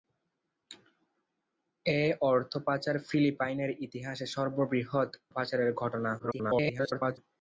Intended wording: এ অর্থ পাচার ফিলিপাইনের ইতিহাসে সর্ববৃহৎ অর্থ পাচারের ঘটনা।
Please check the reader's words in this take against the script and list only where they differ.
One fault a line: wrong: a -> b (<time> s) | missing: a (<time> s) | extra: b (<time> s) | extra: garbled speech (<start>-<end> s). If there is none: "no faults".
missing: অর্থ (5.1 s)
extra: garbled speech (6.2-7.2 s)